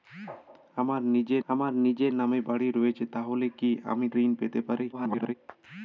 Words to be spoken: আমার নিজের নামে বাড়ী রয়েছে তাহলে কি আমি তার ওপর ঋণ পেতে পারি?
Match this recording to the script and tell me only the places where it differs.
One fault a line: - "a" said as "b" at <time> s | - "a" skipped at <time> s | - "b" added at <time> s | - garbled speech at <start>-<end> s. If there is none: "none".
- "আমার নিজের" added at 1.5 s
- "তার ওপর" skipped at 4.1 s
- garbled speech at 4.9-5.3 s